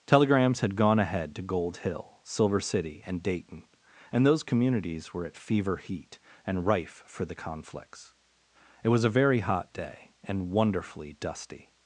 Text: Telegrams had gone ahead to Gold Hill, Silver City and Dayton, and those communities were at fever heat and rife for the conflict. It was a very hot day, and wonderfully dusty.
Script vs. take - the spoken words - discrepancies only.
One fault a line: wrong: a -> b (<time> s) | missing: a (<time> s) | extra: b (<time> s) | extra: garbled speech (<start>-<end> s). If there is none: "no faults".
wrong: conflict -> conflicts (7.3 s)